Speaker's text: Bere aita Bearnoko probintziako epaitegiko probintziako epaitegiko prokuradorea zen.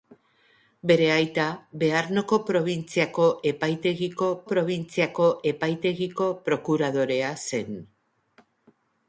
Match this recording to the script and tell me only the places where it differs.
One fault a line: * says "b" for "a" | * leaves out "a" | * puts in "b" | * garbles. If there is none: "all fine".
all fine